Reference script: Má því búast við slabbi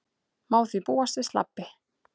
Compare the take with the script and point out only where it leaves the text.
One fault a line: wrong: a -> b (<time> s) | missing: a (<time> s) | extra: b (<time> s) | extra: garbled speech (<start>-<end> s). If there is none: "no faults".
no faults